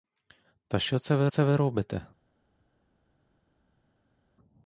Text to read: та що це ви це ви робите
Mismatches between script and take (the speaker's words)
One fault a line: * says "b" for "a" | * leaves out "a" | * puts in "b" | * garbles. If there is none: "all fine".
all fine